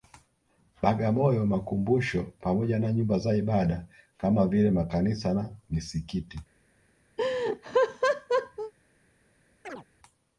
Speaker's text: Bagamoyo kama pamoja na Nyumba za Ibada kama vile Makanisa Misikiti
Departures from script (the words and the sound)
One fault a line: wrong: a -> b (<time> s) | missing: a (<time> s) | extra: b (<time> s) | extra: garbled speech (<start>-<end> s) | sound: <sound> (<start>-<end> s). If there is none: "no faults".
wrong: kama -> makumbusho (1.4 s)
extra: na (5.3 s)
sound: laugh (7.2-8.7 s)
sound: chirp (9.6-9.8 s)